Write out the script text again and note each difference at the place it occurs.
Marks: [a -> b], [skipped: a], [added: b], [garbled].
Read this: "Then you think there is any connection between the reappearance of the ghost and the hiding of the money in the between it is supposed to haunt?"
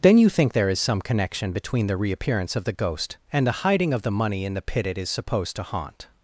"Then you think there is [any -> some] connection between the reappearance of the ghost and the hiding of the money in the [between -> pit] it is supposed to haunt?"